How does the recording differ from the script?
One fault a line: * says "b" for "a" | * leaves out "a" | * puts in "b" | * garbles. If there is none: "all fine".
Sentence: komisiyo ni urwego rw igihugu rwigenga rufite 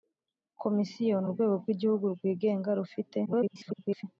* garbles